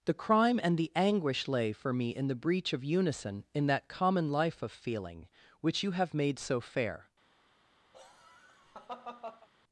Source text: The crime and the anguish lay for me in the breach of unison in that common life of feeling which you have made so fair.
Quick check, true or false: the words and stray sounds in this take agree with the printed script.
false